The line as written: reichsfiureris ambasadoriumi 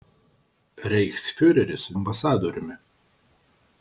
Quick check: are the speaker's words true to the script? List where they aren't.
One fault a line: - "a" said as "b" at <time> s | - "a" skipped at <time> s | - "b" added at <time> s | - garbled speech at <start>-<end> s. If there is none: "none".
none